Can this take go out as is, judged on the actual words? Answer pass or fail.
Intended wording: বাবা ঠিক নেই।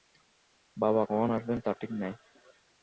fail